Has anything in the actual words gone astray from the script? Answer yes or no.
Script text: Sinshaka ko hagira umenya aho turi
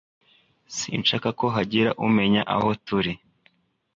no